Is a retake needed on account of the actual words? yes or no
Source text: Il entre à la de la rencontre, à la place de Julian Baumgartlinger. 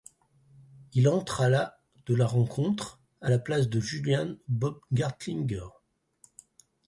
no